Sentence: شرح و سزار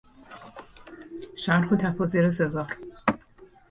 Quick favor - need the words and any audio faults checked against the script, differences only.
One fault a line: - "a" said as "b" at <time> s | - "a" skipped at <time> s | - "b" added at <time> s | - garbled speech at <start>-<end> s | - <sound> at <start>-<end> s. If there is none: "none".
- "تفاسیر" added at 1.8 s